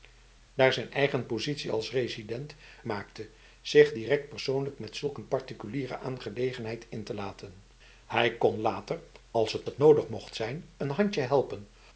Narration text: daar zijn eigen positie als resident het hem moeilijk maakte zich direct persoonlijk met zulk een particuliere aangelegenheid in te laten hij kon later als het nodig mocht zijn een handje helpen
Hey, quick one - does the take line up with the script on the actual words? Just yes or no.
no